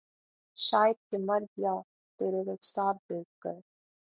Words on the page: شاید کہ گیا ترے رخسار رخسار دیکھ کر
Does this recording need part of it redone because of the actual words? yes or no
yes